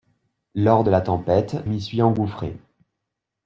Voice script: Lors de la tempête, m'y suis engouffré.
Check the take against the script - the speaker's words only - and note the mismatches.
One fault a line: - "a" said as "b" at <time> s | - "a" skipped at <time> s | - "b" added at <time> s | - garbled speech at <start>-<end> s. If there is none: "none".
none